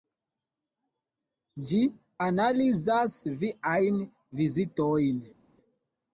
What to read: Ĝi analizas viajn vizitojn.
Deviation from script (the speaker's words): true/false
false